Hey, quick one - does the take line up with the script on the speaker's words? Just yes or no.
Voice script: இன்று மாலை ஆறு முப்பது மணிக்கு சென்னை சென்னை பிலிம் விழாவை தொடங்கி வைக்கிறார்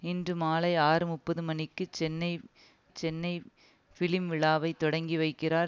yes